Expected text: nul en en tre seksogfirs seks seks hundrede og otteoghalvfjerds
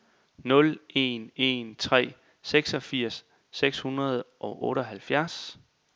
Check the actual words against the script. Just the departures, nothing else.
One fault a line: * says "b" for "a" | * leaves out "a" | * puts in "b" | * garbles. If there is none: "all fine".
* leaves out "seks"